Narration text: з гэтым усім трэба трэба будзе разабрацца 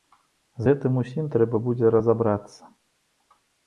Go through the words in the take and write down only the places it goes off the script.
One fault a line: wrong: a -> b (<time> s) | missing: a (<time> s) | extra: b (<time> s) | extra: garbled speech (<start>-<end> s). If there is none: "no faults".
missing: трэба (1.6 s)